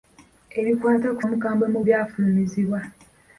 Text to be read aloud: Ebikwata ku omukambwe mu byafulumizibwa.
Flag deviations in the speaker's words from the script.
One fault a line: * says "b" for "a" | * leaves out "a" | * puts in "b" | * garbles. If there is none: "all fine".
all fine